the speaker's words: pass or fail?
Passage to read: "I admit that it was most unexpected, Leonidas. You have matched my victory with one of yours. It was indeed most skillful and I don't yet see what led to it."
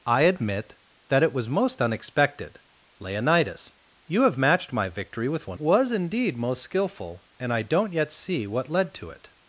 fail